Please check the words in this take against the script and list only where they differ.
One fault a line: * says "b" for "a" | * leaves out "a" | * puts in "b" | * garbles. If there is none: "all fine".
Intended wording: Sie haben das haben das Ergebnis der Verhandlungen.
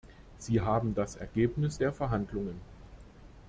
* leaves out "haben das"